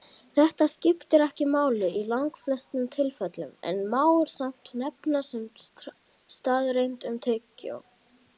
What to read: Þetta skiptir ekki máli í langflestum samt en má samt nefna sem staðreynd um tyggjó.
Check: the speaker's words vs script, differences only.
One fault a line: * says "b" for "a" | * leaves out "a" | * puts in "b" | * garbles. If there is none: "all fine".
* says "tilfellum" for "samt"